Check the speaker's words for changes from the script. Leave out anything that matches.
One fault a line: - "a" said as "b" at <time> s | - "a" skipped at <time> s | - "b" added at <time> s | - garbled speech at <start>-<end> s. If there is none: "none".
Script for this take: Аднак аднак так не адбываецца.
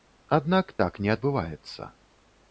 - "аднак" skipped at 0.7 s